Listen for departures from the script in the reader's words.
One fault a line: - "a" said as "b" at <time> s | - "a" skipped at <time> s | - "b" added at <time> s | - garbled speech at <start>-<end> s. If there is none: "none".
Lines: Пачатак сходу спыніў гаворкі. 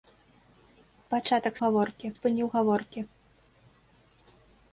- "сходу" said as "гаворкі" at 1.6 s